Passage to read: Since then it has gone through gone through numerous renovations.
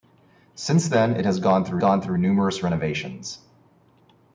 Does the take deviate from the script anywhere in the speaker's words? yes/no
no